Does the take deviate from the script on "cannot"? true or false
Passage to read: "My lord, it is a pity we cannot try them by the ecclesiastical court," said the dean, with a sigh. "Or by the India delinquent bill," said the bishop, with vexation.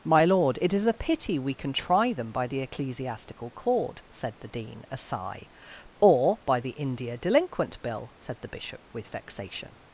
true